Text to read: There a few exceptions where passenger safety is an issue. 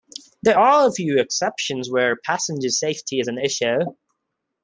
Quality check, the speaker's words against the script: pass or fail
fail